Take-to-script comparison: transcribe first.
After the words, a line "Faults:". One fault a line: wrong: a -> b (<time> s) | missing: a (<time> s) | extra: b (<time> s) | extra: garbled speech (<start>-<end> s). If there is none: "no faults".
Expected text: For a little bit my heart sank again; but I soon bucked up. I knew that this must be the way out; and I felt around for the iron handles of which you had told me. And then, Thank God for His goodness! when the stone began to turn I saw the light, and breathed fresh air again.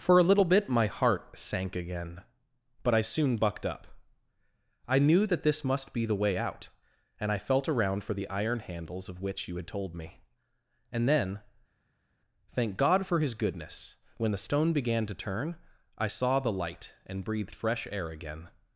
For a little bit my heart sank again; but I soon bucked up. I knew that this must be the way out; and I felt around for the iron handles of which you had told me. And then, Thank God for His goodness! when the stone began to turn I saw the light, and breathed fresh air again.
Faults:
no faults